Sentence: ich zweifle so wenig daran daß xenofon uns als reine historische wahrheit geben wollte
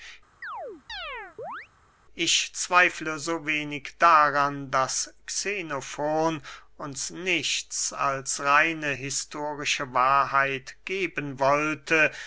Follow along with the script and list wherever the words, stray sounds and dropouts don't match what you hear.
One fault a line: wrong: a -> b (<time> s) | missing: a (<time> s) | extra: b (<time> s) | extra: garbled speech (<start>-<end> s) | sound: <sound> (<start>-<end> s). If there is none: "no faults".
sound: chirp (0.4-1.7 s)
extra: nichts (7.1 s)